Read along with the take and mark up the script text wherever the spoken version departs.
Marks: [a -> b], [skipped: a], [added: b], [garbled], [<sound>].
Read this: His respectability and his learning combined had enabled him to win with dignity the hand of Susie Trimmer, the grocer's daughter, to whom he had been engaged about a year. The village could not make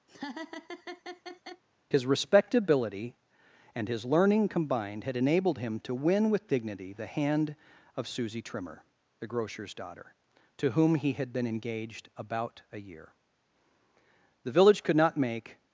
[laugh] His respectability and his learning combined had enabled him to win with dignity the hand of Susie Trimmer, the grocer's daughter, to whom he had been engaged about a year. The village could not make